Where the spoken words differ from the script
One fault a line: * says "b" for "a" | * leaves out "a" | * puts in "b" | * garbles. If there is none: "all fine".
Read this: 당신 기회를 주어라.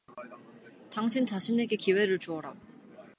* puts in "자신에게"